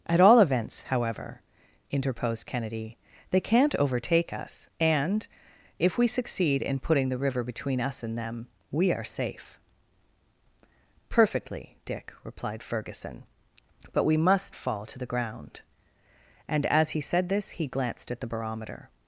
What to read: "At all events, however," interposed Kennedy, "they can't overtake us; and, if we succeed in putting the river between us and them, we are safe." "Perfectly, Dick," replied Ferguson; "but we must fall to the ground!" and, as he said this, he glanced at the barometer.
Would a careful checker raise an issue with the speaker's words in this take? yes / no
no